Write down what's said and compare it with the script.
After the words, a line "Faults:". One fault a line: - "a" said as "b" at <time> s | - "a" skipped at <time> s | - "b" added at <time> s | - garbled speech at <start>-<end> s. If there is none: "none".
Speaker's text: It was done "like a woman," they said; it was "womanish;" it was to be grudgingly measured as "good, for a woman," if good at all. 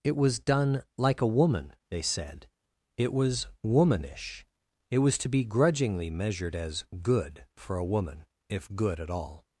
It was done "like a woman," they said; it was "womanish;" it was to be grudgingly measured as "good, for a woman," if good at all.
Faults:
none